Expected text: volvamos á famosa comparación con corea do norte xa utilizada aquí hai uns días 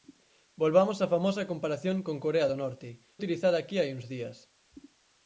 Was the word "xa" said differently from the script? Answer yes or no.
yes